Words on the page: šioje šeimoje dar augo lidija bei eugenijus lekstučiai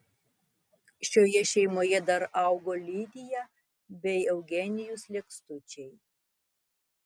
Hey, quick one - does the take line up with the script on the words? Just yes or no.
yes